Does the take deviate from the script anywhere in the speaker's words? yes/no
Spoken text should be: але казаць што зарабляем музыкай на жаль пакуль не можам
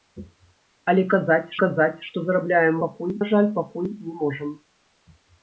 yes